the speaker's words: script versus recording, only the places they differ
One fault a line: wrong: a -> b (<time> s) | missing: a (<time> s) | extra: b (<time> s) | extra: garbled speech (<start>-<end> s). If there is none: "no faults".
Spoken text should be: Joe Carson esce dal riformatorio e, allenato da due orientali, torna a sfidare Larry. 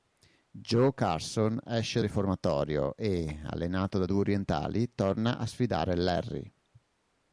missing: dal (2.0 s)